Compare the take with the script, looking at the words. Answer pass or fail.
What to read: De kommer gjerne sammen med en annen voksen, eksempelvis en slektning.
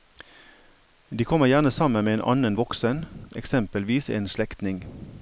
pass